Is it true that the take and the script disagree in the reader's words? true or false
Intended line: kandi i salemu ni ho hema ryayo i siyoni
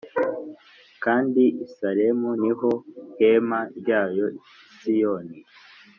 false